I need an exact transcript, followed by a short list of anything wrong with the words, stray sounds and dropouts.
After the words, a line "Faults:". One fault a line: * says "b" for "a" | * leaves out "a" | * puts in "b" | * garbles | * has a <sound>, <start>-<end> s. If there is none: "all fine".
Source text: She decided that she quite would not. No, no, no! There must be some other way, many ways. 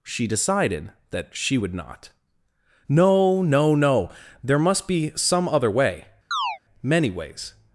She decided that she would not. No, no, no! There must be some other way, many ways.
Faults:
* leaves out "quite"
* has a chirp, 6.3-6.6 s